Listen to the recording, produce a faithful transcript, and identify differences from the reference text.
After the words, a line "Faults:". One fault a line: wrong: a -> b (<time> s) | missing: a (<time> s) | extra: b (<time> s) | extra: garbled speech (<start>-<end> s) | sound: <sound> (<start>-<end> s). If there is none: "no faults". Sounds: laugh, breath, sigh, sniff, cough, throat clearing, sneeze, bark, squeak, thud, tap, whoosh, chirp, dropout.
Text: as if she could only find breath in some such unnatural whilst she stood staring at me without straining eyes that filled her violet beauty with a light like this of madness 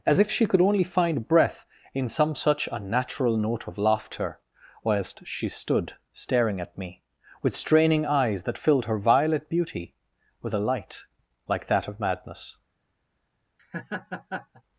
as if she could only find breath in some such unnatural note of laughter whilst she stood staring at me with straining eyes that filled her violet beauty with a light like that of madness
Faults:
extra: note of laughter (3.4 s)
wrong: without -> with (7.4 s)
wrong: this -> that (11.7 s)
sound: laugh (13.6-14.6 s)